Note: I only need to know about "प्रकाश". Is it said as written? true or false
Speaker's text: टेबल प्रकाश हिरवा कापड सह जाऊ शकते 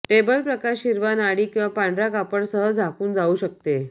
true